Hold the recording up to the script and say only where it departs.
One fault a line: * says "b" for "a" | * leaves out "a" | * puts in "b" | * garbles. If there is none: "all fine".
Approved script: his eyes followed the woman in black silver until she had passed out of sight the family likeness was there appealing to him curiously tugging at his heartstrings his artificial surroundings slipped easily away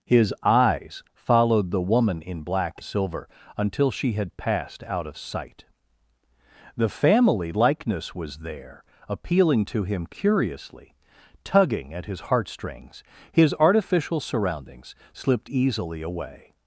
all fine